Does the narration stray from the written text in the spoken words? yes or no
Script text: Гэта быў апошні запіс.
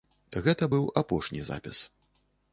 no